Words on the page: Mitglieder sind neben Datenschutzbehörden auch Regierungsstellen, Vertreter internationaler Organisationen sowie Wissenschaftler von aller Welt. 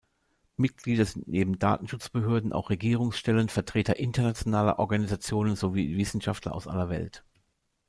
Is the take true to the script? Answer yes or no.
no